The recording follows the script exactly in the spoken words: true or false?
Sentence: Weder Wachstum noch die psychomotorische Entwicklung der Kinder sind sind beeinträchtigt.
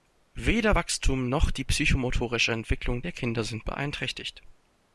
false